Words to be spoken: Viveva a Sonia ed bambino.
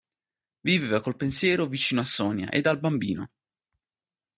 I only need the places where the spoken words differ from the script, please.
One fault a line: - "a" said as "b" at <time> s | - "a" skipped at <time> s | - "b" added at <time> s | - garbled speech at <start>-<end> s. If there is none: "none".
- "col pensiero vicino" added at 1.0 s
- "al" added at 2.7 s